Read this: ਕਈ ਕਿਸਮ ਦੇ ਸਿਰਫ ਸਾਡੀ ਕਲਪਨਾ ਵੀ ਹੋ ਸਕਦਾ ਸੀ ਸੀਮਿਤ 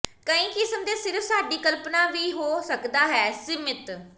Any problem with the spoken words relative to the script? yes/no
yes